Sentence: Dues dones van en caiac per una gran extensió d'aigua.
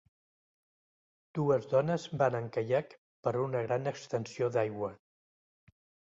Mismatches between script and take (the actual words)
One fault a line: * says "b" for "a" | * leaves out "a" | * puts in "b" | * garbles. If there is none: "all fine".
all fine